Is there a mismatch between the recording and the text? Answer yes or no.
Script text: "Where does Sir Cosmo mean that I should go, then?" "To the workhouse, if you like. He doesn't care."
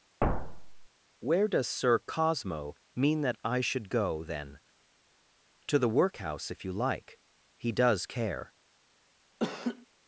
yes